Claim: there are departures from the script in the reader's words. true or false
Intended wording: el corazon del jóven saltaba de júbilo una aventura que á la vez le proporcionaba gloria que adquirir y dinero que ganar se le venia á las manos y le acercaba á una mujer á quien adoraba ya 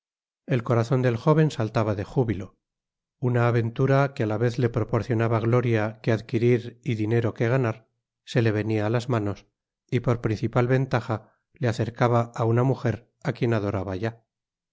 true